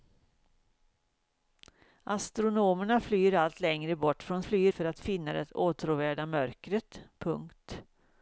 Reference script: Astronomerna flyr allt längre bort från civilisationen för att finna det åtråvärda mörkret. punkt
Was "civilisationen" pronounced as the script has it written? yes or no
no